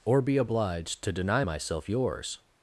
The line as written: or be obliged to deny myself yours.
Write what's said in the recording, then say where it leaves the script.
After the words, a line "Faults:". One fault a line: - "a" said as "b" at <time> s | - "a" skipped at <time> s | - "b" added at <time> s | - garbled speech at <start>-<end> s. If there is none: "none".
or be obliged to deny myself yours.
Faults:
none